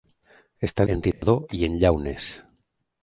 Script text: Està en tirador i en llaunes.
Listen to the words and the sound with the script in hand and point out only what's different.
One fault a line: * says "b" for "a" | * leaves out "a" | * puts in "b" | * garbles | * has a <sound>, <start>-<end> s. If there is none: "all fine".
* has a dropout, 1.1-1.2 s